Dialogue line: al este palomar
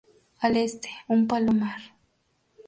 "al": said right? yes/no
yes